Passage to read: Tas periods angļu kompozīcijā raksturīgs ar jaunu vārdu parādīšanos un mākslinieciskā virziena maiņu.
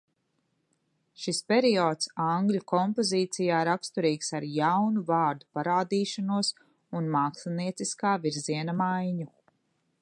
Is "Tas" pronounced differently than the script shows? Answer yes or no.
yes